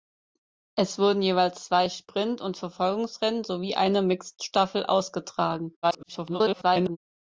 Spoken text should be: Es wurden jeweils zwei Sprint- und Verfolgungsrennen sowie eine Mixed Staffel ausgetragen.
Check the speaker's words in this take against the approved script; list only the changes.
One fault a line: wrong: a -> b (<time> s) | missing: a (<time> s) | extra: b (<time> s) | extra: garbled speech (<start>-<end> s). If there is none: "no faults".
extra: garbled speech (5.8-7.0 s)